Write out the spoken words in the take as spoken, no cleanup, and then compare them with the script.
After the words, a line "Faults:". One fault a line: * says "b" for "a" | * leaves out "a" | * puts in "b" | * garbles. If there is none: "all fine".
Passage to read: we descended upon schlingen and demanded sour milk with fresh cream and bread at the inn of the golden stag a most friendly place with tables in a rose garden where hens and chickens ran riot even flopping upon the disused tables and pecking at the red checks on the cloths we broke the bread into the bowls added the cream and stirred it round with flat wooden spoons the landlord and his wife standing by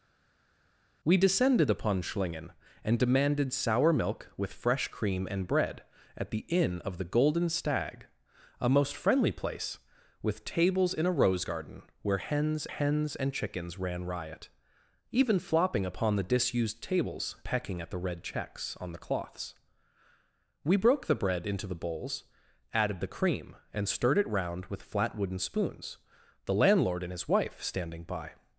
we descended upon schlingen and demanded sour milk with fresh cream and bread at the inn of the golden stag a most friendly place with tables in a rose garden where hens hens and chickens ran riot even flopping upon the disused tables pecking at the red checks on the cloths we broke the bread into the bowls added the cream and stirred it round with flat wooden spoons the landlord and his wife standing by
Faults:
* puts in "hens"
* leaves out "and"